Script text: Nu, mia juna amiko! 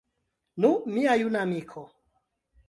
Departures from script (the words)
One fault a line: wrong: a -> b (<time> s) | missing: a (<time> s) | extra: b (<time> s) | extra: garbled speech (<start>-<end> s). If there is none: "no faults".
no faults